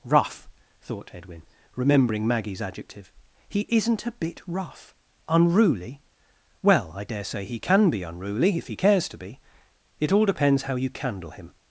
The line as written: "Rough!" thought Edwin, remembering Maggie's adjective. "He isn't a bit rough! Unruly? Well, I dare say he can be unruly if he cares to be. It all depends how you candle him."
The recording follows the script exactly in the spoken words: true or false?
true